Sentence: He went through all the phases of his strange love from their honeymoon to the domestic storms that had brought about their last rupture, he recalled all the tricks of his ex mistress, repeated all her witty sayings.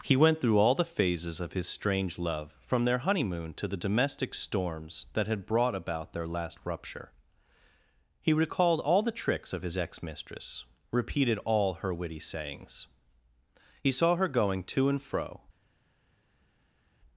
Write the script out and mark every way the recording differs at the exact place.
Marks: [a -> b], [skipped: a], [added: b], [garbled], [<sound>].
He went through all the phases of his strange love from their honeymoon to the domestic storms that had brought about their last rupture, he recalled all the tricks of his ex mistress, repeated all her witty sayings. [added: He saw her going to and fro]